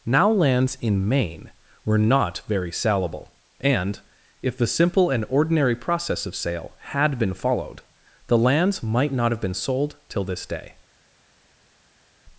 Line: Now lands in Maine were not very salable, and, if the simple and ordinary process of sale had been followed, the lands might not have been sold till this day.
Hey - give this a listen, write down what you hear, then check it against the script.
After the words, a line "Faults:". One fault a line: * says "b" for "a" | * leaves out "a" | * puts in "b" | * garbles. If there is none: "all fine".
Now lands in Maine were not very salable, and, if the simple and ordinary process of sale had been followed, the lands might not have been sold till this day.
Faults:
all fine